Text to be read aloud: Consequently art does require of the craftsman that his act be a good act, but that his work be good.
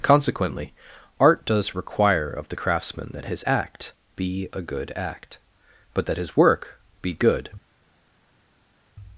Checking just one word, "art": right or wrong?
right